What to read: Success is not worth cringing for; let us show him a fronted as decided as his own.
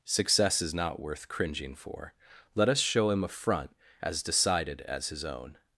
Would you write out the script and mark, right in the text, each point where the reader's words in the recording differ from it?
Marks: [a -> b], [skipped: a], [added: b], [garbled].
Success is not worth cringing for; let us show him a [fronted -> front] as decided as his own.